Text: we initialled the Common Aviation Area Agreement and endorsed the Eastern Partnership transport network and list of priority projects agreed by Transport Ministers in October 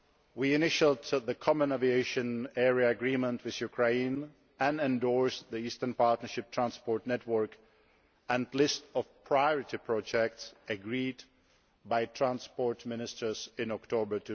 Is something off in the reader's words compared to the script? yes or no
yes